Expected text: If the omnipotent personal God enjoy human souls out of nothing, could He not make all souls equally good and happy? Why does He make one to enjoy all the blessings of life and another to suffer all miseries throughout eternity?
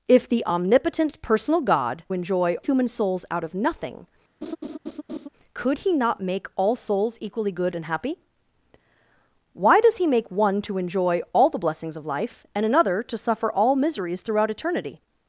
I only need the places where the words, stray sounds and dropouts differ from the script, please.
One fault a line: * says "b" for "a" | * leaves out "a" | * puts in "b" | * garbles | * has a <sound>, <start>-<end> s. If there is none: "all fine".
* has a laugh, 4.4-5.3 s